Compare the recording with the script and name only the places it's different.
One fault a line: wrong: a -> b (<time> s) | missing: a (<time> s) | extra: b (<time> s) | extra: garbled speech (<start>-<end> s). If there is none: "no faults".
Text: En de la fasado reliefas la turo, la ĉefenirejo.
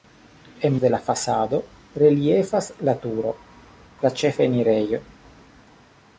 no faults